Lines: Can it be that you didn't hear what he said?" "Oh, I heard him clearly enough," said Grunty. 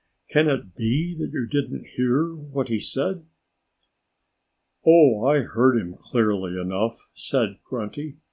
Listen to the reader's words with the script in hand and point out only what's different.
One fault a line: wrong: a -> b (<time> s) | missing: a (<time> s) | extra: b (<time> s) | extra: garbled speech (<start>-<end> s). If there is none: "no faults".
no faults